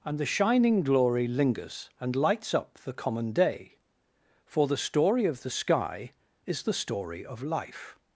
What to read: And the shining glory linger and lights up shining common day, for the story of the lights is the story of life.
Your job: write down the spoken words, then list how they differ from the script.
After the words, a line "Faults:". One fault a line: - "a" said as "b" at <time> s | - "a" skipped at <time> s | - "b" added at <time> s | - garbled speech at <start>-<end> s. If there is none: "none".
And the shining glory lingers and lights up the common day, for the story of the sky is the story of life.
Faults:
- "linger" said as "lingers" at 1.3 s
- "shining" said as "the" at 2.8 s
- "lights" said as "sky" at 5.5 s